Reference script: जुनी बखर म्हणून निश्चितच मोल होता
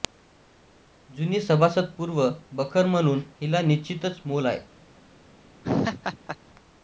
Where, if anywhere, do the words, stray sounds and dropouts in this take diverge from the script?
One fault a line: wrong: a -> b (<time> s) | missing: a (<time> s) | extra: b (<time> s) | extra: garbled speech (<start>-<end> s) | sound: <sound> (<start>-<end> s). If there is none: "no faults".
extra: सभासदपूर्व (1.4 s)
extra: हिला (3.4 s)
wrong: होता -> आहे (4.5 s)
sound: laugh (5.6-6.4 s)